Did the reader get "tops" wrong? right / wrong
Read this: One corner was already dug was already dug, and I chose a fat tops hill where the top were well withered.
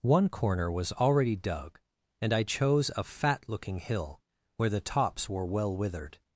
wrong